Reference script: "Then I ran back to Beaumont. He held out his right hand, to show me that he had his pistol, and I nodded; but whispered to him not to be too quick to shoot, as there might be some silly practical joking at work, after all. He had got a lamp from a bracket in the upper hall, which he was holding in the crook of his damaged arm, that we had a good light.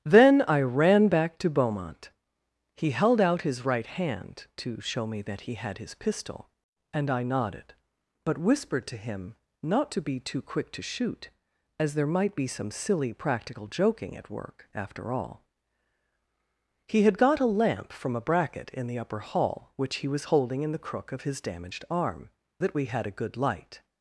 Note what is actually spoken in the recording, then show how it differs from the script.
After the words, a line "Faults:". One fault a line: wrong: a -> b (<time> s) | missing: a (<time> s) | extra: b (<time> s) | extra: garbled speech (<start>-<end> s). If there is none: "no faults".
"Then I ran back to Beaumont. He held out his right hand, to show me that he had his pistol, and I nodded; but whispered to him not to be too quick to shoot, as there might be some silly practical joking at work, after all. He had got a lamp from a bracket in the upper hall, which he was holding in the crook of his damaged arm, that we had a good light.
Faults:
no faults